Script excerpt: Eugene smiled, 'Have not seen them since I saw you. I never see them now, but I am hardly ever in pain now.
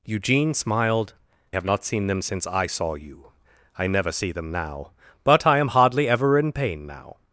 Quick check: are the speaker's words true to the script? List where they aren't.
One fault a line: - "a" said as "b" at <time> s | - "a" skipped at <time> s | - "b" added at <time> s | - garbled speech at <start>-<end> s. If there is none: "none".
none